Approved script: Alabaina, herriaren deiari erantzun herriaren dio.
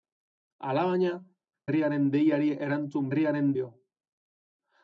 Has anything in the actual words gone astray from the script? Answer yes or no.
no